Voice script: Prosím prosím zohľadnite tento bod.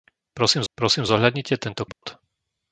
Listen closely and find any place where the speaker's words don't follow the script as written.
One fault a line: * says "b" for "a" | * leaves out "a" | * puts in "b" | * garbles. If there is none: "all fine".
all fine